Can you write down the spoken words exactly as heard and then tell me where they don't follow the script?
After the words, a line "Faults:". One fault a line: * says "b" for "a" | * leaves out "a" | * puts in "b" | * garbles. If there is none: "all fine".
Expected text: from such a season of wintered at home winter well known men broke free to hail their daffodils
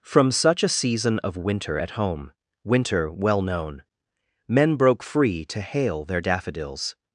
from such a season of winter at home winter well known men broke free to hail their daffodils
Faults:
* says "winter" for "wintered"